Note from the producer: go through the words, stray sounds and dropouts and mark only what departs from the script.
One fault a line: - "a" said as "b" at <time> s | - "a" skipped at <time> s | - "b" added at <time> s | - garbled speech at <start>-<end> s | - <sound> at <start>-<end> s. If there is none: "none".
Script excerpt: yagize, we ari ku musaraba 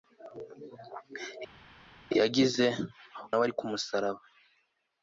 none